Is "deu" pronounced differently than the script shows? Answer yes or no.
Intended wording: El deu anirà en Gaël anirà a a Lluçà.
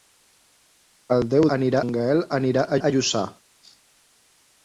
no